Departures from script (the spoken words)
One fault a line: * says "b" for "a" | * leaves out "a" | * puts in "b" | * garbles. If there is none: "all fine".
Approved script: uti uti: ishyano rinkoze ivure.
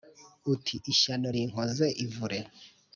* leaves out "uti"